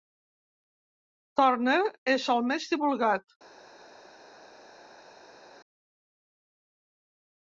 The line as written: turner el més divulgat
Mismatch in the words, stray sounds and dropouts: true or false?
true